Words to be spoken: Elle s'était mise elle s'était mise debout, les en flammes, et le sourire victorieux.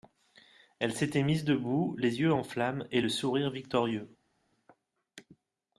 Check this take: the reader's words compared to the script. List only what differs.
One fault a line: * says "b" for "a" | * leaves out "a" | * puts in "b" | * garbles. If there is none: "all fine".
* leaves out "elle s'était mise"
* puts in "yeux"